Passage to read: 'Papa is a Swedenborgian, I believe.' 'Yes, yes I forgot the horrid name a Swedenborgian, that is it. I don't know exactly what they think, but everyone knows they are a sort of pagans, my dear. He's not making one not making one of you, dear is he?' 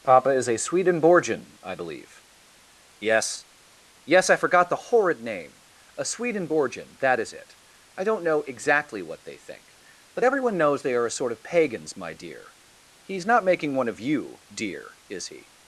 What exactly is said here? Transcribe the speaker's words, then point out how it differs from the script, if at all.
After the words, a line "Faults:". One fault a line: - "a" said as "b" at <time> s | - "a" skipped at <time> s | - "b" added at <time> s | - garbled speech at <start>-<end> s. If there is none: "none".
'Papa is a Swedenborgian, I believe.' 'Yes, yes I forgot the horrid name a Swedenborgian, that is it. I don't know exactly what they think, but everyone knows they are a sort of pagans, my dear. He's not making one of you, dear is he?'
Faults:
- "not making one" skipped at 13.9 s